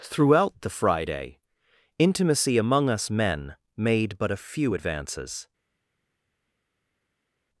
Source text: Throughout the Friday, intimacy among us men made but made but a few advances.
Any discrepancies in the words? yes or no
yes